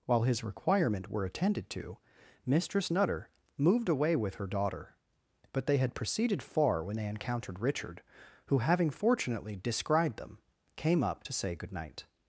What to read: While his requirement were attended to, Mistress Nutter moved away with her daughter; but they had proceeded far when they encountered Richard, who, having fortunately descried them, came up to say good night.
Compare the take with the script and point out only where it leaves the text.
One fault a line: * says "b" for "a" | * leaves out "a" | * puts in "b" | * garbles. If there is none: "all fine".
all fine